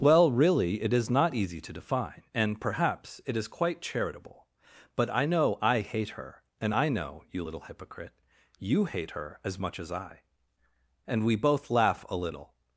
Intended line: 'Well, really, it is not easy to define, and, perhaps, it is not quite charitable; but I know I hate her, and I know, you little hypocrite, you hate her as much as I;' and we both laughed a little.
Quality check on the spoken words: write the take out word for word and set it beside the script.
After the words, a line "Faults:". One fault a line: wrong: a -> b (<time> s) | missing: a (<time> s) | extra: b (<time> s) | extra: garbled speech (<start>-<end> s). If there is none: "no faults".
'Well, really, it is not easy to define, and, perhaps, it is quite charitable; but I know I hate her, and I know, you little hypocrite, you hate her as much as I;' and we both laugh a little.
Faults:
missing: not (3.5 s)
wrong: laughed -> laugh (11.7 s)